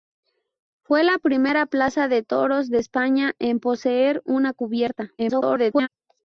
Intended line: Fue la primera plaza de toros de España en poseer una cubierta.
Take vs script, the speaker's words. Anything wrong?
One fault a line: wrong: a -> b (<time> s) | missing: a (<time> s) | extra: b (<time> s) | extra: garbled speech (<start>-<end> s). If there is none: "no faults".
extra: garbled speech (5.2-5.9 s)